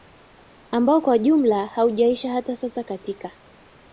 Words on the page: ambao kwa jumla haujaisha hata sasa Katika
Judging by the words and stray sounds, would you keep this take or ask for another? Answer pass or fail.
pass